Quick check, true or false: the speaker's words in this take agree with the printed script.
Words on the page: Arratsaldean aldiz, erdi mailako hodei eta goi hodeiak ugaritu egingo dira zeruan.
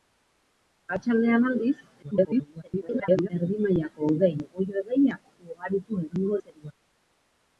false